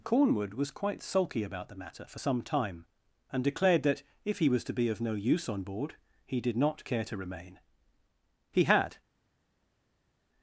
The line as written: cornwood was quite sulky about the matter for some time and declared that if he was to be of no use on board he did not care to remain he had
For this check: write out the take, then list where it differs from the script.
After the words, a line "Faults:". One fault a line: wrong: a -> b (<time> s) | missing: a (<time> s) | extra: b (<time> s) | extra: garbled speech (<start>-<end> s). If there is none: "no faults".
cornwood was quite sulky about the matter for some time and declared that if he was to be of no use on board he did not care to remain he had
Faults:
no faults